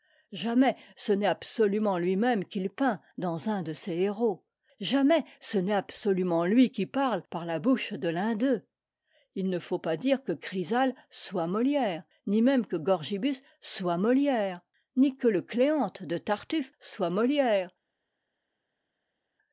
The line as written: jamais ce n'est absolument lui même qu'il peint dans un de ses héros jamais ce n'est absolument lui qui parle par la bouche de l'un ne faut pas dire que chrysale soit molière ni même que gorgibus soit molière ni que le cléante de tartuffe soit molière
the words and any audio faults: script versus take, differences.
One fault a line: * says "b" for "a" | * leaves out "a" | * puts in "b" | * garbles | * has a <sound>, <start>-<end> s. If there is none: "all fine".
* puts in "d'eux il"